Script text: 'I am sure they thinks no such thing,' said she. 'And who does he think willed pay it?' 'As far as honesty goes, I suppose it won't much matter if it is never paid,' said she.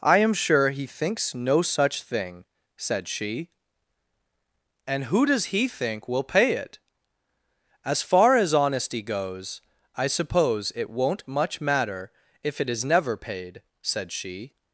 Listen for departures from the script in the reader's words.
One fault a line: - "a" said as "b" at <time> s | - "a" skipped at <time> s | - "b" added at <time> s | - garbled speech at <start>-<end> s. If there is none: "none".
- "they" said as "he" at 0.7 s
- "willed" said as "will" at 6.1 s